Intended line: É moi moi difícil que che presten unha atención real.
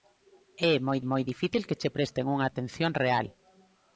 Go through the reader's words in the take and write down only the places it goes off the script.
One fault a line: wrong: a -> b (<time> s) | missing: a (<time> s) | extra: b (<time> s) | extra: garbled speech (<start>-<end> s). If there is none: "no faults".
no faults